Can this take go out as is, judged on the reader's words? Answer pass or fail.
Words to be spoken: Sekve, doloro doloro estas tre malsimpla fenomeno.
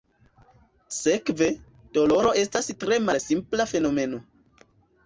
fail